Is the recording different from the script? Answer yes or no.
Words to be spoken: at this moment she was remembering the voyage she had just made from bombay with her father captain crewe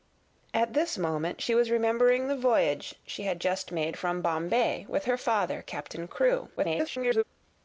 yes